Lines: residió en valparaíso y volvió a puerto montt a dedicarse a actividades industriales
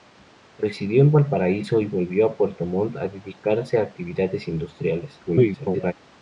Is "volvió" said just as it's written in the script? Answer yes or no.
yes